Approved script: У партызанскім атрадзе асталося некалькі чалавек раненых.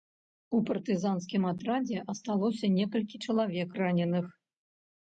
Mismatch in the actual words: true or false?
false